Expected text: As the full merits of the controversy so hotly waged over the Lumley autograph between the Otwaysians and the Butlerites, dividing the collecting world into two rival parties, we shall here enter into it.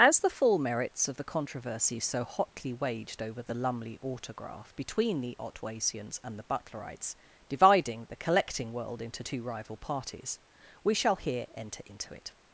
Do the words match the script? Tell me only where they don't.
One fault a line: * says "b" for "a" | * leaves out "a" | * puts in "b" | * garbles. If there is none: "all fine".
all fine